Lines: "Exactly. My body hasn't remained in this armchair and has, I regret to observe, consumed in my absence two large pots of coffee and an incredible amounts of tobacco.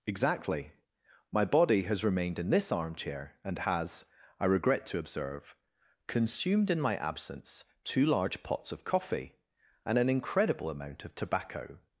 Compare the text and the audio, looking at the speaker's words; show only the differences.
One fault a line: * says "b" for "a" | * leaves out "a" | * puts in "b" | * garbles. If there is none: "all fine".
* says "has" for "hasn't"
* says "amount" for "amounts"